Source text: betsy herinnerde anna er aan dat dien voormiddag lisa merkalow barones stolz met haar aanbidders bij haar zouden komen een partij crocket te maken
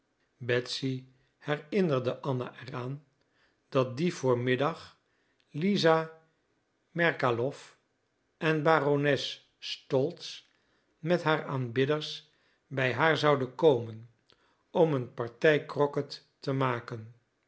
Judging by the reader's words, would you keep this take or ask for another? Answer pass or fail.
fail